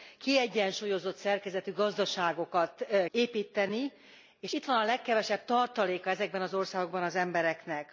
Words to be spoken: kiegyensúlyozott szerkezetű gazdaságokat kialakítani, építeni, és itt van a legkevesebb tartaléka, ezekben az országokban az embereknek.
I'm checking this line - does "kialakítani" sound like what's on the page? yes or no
no